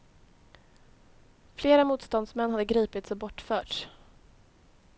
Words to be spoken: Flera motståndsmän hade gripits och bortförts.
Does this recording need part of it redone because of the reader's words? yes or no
no